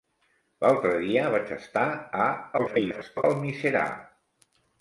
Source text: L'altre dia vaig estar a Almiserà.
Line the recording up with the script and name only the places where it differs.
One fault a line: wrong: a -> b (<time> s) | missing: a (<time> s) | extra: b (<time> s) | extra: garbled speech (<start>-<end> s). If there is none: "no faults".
extra: garbled speech (2.6-3.2 s)